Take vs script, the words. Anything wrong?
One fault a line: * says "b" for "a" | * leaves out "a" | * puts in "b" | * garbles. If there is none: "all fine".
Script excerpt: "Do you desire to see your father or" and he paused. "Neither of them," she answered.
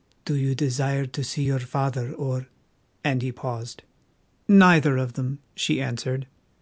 all fine